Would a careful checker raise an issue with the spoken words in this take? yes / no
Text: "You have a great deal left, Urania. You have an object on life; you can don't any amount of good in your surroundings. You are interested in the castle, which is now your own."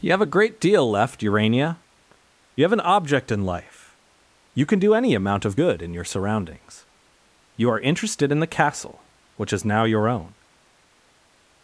yes